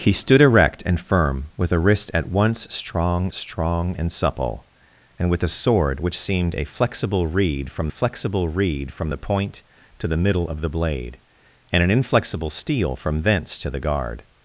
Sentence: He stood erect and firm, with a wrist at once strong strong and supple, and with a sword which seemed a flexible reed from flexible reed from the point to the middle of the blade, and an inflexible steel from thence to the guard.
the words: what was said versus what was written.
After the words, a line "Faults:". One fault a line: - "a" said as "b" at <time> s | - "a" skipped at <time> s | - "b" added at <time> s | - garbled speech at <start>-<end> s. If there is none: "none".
He stood erect and firm, with a wrist at once strong strong and supple, and with a sword which seemed a flexible reed from flexible reed from the point to the middle of the blade, and an inflexible steel from thence to the guard.
Faults:
none